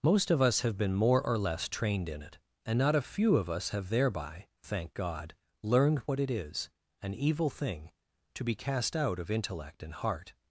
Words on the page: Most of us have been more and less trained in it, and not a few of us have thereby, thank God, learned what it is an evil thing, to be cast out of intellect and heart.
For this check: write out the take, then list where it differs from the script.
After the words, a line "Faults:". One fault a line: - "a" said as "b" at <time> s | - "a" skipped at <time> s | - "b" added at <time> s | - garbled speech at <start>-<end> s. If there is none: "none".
Most of us have been more or less trained in it, and not a few of us have thereby, thank God, learned what it is an evil thing, to be cast out of intellect and heart.
Faults:
- "and" said as "or" at 1.2 s